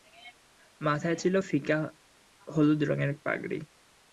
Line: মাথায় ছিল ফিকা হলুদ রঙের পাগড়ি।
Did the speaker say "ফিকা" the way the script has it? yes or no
yes